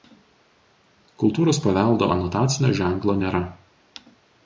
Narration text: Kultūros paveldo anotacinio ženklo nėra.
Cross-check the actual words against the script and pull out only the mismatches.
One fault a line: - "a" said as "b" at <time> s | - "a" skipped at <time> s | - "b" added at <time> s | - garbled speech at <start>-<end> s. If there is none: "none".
none